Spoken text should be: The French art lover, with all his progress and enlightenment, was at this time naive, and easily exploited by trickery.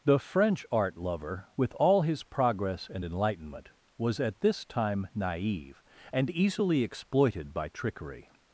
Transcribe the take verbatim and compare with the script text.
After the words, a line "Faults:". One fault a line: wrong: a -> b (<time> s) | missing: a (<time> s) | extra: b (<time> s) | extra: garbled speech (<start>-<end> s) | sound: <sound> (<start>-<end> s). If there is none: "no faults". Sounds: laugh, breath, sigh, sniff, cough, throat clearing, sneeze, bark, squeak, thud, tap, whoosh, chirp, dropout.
The French art lover, with all his progress and enlightenment, was at this time naive, and easily exploited by trickery.
Faults:
no faults